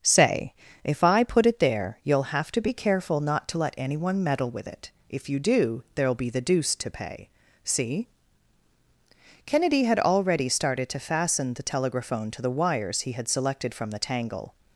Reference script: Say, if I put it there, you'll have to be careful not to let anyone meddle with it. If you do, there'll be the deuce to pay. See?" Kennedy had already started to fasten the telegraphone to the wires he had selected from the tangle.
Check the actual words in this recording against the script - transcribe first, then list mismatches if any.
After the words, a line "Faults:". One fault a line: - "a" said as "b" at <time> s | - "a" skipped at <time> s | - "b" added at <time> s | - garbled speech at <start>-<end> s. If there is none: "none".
Say, if I put it there, you'll have to be careful not to let anyone meddle with it. If you do, there'll be the deuce to pay. See?" Kennedy had already started to fasten the telegraphone to the wires he had selected from the tangle.
Faults:
none